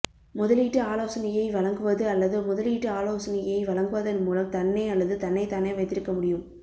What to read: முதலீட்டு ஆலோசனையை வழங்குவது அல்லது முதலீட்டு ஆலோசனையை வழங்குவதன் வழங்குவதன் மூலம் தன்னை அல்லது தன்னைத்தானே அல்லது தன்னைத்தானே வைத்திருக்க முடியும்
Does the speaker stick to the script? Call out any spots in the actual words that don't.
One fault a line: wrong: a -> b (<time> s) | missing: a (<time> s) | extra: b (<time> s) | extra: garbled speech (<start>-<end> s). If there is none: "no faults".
missing: வழங்குவதன் (4.2 s)
missing: அல்லது தன்னைத்தானே (5.7 s)